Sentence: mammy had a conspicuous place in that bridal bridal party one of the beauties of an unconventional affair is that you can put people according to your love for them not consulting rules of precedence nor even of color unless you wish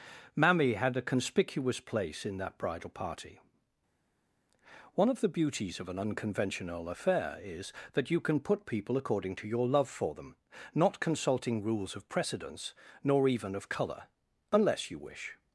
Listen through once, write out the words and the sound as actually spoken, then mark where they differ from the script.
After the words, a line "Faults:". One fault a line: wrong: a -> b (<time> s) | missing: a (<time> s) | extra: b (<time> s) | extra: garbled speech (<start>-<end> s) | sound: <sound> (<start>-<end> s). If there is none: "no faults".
mammy had a conspicuous place in that bridal party one of the beauties of an unconventional affair is that you can put people according to your love for them not consulting rules of precedence nor even of color unless you wish
Faults:
missing: bridal (2.9 s)